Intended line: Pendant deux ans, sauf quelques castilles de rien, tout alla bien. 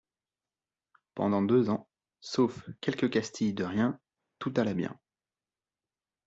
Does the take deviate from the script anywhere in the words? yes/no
no